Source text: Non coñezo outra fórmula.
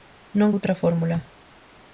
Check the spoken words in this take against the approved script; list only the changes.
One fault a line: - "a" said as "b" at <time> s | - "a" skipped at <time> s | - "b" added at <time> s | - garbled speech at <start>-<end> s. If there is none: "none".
- "coñezo" skipped at 0.5 s